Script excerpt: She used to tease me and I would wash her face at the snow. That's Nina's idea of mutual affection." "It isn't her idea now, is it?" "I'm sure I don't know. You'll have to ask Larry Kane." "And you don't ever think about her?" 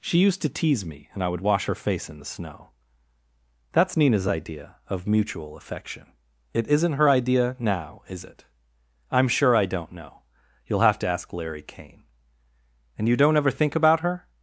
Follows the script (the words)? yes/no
no